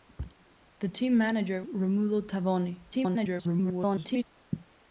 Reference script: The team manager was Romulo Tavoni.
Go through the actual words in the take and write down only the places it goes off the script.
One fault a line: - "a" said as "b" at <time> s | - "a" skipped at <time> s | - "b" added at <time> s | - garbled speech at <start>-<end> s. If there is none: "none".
- "was" skipped at 1.6 s
- garbled speech at 2.9-4.2 s